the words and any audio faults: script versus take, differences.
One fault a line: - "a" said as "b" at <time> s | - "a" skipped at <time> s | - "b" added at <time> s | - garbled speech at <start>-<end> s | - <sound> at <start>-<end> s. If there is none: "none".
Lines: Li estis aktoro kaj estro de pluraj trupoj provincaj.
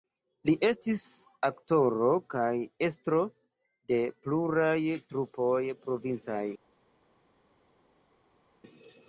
none